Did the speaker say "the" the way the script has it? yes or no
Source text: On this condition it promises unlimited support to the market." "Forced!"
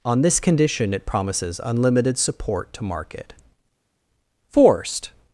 no